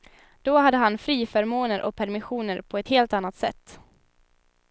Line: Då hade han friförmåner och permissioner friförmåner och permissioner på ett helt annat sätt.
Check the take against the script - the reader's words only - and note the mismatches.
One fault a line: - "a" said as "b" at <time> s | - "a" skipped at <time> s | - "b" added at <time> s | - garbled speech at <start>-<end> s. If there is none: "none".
- "friförmåner och permissioner" skipped at 2.6 s